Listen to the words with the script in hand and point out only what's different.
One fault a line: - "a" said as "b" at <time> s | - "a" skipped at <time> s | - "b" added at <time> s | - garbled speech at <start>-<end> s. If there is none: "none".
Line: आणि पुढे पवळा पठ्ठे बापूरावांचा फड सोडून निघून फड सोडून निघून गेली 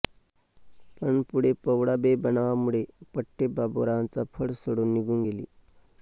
- "आणि" said as "पण" at 1.0 s
- "बेबनावामुळे" added at 2.0 s
- "फड सोडून निघून" skipped at 5.2 s